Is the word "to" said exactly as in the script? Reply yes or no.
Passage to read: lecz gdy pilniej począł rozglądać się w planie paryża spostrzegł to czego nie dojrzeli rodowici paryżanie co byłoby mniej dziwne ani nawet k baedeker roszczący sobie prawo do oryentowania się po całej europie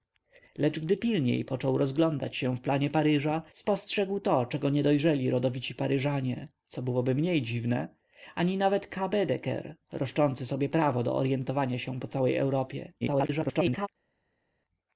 yes